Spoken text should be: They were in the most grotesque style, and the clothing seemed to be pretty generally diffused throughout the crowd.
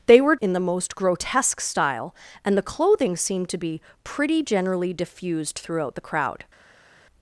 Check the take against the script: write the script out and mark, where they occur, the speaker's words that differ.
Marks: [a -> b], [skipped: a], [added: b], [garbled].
They were in the most grotesque style, and the clothing seemed to be pretty generally diffused throughout the crowd.